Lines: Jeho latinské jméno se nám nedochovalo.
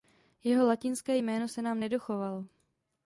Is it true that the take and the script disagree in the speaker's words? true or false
false